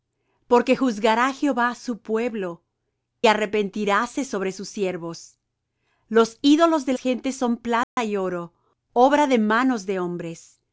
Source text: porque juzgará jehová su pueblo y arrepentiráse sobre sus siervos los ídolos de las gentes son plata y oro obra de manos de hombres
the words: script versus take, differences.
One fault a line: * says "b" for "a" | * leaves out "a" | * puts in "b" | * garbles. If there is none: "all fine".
* leaves out "y"
* leaves out "las"